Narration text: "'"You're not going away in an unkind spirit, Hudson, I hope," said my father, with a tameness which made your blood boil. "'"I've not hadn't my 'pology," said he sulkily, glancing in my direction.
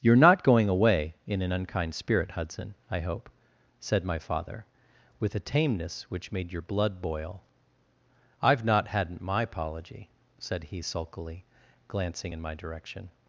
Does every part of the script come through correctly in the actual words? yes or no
yes